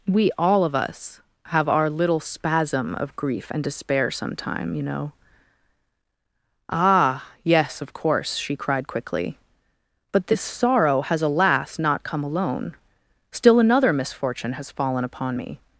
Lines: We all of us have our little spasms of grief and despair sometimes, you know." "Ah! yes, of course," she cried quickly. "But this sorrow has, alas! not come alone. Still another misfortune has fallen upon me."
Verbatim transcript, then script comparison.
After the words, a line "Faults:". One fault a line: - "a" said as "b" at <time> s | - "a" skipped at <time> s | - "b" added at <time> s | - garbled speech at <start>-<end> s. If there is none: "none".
We all of us have our little spasm of grief and despair sometime, you know." "Ah! yes, of course," she cried quickly. "But this sorrow has, alas! not come alone. Still another misfortune has fallen upon me."
Faults:
- "spasms" said as "spasm" at 2.2 s
- "sometimes" said as "sometime" at 4.1 s